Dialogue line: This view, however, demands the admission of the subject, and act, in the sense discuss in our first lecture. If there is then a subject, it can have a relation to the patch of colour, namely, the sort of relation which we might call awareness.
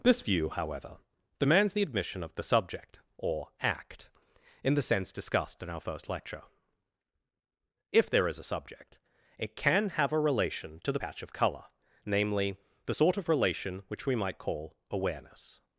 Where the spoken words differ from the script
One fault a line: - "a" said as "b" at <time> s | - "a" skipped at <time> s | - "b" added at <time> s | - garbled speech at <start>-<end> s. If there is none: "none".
- "and" said as "or" at 3.2 s
- "discuss" said as "discussed" at 5.1 s
- "then" skipped at 8.4 s